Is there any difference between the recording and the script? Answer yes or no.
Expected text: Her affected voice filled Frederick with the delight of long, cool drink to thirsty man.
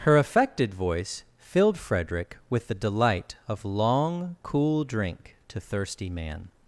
no